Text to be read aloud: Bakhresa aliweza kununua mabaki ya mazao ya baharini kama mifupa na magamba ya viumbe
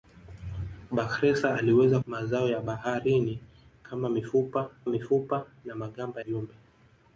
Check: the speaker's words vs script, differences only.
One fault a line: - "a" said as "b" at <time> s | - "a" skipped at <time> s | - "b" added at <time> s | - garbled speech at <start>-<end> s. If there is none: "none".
- "kununua mabaki ya" skipped at 2.0 s
- "mifupa" added at 4.9 s
- "ya" skipped at 6.2 s